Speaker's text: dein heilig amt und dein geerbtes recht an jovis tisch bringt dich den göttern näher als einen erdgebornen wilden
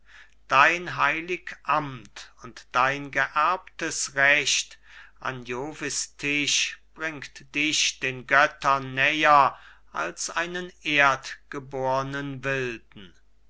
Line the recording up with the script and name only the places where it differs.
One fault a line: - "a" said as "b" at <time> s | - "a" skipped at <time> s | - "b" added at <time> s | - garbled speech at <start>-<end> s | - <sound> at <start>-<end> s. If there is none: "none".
none